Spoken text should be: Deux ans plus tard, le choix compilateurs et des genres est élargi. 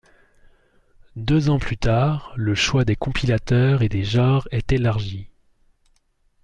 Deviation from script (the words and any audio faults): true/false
true